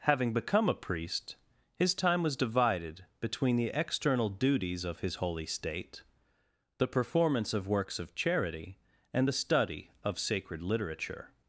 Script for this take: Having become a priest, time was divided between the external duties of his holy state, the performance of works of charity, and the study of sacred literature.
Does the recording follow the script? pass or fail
fail